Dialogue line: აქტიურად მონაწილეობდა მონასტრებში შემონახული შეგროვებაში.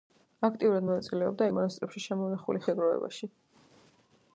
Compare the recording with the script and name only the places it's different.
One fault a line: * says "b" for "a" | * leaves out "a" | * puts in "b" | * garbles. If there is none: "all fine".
all fine